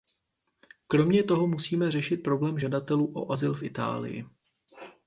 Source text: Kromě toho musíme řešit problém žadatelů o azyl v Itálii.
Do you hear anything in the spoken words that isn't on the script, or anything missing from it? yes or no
no